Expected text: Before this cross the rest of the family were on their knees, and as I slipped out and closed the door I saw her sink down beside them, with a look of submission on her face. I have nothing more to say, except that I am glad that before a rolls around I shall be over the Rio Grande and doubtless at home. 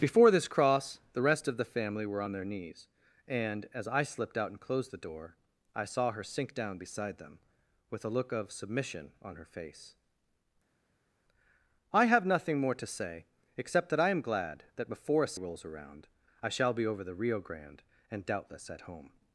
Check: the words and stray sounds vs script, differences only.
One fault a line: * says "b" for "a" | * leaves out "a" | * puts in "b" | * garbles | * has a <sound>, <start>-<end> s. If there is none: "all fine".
all fine